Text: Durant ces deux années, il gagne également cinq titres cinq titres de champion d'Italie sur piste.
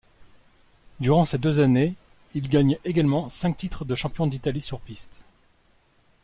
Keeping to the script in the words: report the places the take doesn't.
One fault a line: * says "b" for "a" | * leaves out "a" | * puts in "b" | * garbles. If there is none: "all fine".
* leaves out "cinq titres"